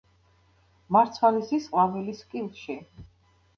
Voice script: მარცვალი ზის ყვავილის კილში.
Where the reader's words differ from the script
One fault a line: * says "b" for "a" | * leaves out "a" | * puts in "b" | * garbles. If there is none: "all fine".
all fine